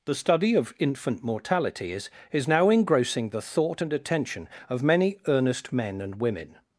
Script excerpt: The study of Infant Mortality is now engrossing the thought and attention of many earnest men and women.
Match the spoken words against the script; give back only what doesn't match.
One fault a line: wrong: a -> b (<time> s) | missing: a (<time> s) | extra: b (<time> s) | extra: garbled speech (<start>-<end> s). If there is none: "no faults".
extra: is (2.3 s)